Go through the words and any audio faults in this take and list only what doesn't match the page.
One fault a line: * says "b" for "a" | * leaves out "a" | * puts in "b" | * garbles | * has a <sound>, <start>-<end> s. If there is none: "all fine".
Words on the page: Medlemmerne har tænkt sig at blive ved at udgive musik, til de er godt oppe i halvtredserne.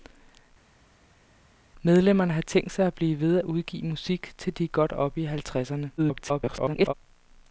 * garbles